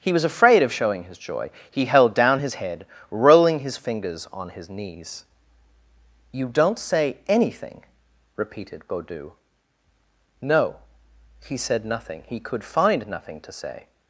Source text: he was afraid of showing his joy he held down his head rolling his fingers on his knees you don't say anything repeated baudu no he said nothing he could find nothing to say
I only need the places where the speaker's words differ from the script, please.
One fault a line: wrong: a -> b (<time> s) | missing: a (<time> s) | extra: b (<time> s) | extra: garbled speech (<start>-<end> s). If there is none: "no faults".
no faults